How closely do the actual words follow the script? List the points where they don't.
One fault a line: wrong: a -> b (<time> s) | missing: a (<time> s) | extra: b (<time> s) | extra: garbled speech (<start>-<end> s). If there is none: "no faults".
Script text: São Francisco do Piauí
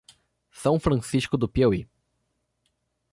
no faults